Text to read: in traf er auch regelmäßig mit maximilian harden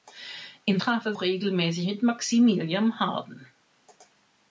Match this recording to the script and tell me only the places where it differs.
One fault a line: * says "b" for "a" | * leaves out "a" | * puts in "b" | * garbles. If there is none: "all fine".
all fine